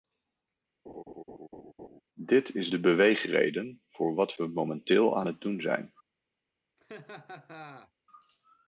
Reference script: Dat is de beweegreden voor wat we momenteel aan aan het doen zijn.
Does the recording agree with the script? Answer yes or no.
no